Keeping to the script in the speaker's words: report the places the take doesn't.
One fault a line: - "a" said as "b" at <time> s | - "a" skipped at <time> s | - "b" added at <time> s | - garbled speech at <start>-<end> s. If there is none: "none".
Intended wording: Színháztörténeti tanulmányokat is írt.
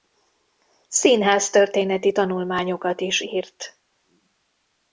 none